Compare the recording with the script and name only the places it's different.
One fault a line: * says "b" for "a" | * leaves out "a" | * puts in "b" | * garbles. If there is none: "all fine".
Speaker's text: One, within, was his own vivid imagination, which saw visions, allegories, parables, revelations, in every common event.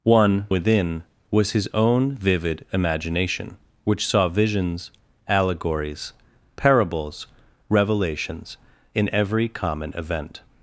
all fine